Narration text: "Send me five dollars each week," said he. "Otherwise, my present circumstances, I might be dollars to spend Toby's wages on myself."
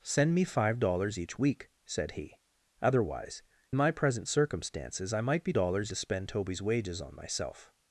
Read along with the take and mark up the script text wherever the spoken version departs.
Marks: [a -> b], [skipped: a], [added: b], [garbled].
"Send me five dollars each week," said he. "Otherwise, my present circumstances, I might be dollars to spend Toby's wages on myself."